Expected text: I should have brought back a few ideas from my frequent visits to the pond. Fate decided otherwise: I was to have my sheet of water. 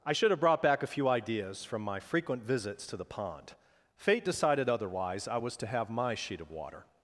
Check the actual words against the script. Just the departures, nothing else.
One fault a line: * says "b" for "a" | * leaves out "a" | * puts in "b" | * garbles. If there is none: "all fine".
all fine